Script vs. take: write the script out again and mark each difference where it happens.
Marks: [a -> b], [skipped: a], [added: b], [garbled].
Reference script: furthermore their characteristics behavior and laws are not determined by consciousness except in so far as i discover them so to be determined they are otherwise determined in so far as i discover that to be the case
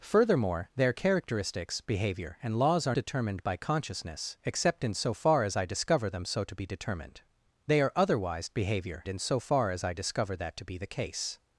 furthermore their characteristics behavior and laws are [skipped: not] determined by consciousness except in so far as i discover them so to be determined they are otherwise [determined -> behavior] in so far as i discover that to be the case